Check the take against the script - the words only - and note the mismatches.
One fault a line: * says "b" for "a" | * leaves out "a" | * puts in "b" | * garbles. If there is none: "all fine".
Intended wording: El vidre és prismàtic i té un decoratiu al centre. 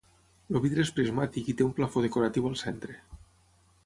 * puts in "plafó"